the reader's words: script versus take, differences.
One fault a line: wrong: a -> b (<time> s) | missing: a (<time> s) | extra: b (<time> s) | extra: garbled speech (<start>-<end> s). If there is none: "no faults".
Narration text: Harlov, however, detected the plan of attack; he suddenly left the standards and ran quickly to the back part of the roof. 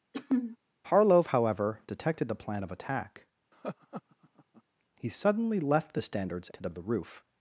missing: and ran quickly (6.5 s)
missing: back part (6.7 s)